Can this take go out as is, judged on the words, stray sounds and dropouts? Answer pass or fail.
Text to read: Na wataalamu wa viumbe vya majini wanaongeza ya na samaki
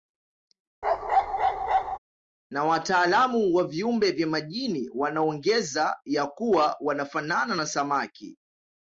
fail